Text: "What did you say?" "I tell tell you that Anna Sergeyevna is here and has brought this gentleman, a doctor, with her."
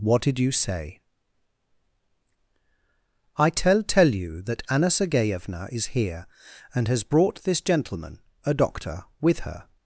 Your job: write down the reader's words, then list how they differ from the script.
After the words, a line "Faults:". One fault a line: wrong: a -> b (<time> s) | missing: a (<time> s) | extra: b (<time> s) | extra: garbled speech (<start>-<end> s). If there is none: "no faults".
"What did you say?" "I tell tell you that Anna Sergeyevna is here and has brought this gentleman, a doctor, with her."
Faults:
no faults